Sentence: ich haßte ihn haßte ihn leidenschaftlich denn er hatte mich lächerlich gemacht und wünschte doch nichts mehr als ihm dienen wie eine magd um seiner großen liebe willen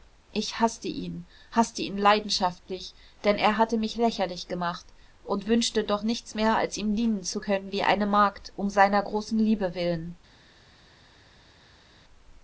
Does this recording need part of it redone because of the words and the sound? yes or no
yes